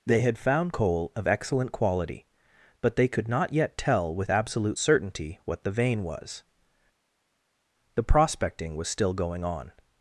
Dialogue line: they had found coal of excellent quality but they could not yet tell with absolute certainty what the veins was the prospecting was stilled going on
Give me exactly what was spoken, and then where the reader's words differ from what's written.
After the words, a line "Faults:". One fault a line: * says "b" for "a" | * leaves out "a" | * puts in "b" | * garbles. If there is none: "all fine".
they had found coal of excellent quality but they could not yet tell with absolute certainty what the vein was the prospecting was still going on
Faults:
* says "vein" for "veins"
* says "still" for "stilled"